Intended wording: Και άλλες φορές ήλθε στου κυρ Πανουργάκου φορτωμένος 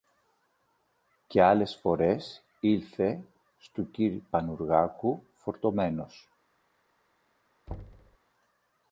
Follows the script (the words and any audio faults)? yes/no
no